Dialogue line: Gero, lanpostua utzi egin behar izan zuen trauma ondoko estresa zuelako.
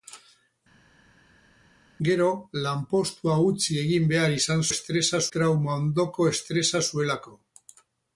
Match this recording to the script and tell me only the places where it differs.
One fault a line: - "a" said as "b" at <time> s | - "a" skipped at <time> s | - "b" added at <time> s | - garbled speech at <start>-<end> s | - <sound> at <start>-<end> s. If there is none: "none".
- "zuen" said as "estresa" at 4.7 s